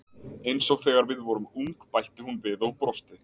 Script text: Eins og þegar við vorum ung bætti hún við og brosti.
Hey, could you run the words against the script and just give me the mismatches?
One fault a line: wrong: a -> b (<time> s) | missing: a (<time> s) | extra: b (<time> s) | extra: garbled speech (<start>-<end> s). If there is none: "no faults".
no faults